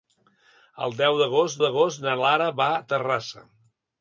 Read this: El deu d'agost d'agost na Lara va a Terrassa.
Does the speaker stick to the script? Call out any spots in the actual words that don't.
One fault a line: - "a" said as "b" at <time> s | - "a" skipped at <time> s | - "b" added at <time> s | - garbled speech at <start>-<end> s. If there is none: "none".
none